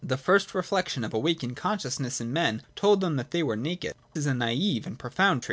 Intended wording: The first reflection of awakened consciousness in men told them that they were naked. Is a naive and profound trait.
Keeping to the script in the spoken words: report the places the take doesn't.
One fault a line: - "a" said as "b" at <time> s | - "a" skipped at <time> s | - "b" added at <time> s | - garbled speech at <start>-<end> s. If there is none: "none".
none